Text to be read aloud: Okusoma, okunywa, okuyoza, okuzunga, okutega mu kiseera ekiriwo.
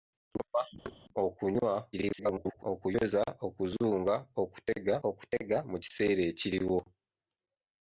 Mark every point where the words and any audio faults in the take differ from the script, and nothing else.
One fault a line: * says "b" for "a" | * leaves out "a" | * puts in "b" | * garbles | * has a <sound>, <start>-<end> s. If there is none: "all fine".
* has a thud, 0.8-1.0 s
* garbles
* puts in "okutega"